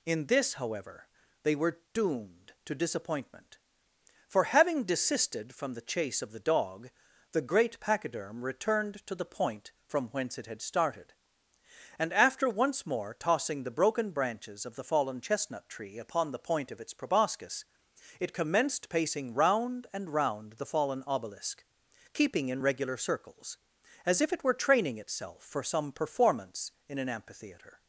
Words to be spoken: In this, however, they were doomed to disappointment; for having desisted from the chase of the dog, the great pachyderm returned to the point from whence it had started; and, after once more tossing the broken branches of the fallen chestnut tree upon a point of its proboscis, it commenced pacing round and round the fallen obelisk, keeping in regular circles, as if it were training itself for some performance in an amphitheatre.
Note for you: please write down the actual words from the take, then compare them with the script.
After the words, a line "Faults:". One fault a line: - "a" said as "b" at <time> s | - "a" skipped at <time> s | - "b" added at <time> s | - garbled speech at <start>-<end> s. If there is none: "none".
In this, however, they were doomed to disappointment; for having desisted from the chase of the dog, the great pachyderm returned to the point from whence it had started; and, after once more tossing the broken branches of the fallen chestnut tree upon the point of its proboscis, it commenced pacing round and round the fallen obelisk, keeping in regular circles, as if it were training itself for some performance in an amphitheatre.
Faults:
- "a" said as "the" at 16.3 s